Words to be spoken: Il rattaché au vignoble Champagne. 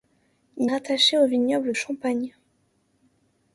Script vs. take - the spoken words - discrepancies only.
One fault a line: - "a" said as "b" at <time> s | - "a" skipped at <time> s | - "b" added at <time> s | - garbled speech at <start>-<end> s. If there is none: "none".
none